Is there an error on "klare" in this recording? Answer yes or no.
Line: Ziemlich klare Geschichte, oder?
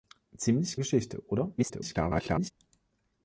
yes